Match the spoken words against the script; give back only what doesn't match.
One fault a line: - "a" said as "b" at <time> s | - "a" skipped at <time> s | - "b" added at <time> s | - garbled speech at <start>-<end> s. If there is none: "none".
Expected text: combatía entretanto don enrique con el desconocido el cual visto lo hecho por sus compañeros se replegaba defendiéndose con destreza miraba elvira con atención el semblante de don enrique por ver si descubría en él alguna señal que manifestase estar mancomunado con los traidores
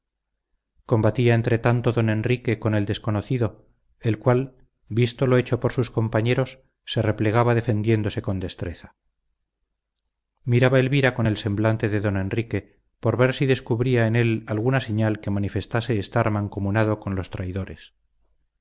- "atención" skipped at 11.3 s